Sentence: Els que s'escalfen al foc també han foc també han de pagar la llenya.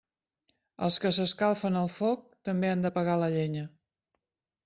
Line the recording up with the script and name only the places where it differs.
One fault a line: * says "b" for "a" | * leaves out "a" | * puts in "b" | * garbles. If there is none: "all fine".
* leaves out "foc també han"